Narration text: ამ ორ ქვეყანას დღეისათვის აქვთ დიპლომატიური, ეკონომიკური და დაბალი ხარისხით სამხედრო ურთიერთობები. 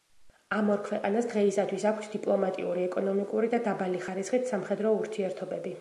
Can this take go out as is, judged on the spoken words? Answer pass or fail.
pass